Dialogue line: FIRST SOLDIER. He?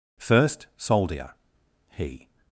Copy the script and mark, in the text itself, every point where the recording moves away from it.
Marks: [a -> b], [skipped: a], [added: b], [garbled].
FIRST SOLDIER. He?